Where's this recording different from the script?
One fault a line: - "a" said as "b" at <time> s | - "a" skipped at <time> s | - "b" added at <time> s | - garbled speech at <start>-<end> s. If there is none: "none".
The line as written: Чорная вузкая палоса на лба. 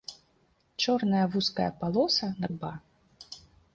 none